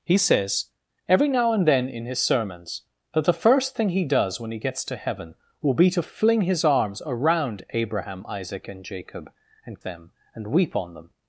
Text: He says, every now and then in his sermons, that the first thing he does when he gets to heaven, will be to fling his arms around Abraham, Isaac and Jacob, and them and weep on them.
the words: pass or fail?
pass